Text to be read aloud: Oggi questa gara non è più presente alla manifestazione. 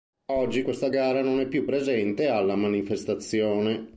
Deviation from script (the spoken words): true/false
false